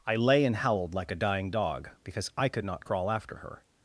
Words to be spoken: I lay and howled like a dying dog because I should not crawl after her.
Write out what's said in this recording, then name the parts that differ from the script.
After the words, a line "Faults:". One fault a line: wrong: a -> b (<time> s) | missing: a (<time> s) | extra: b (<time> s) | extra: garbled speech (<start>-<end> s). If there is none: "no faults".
I lay and howled like a dying dog because I could not crawl after her.
Faults:
wrong: should -> could (2.5 s)